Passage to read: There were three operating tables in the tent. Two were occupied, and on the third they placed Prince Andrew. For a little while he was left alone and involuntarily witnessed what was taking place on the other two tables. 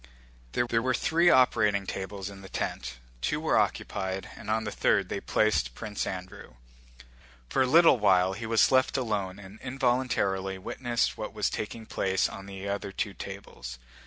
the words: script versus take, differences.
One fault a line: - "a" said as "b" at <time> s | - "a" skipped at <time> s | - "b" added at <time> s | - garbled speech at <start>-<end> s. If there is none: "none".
- "there" added at 0.7 s